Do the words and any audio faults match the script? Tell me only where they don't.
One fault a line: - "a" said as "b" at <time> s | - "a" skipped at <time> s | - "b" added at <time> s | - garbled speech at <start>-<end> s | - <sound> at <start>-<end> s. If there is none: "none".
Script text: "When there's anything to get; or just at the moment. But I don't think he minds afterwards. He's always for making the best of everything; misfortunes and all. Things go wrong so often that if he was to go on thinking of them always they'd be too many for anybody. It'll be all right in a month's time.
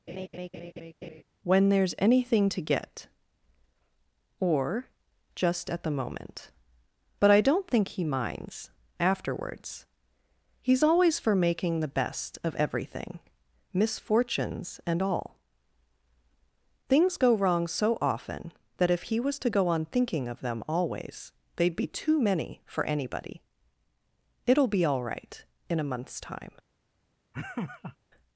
- laugh at 0.1-1.2 s
- laugh at 27.3-28.0 s